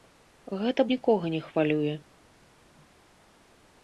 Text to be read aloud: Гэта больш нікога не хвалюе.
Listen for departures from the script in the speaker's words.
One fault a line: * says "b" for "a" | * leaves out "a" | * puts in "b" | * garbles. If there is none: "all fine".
* leaves out "больш"